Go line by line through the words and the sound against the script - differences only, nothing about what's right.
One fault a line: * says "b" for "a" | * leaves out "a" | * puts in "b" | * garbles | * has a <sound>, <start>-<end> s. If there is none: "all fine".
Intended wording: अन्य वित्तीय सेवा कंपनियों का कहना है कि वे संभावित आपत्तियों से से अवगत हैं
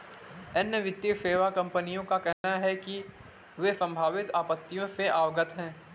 * has a dropout, 2.3-2.4 s
* leaves out "से"